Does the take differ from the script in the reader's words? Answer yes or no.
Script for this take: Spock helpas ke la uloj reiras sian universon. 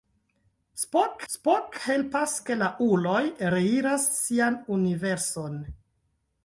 yes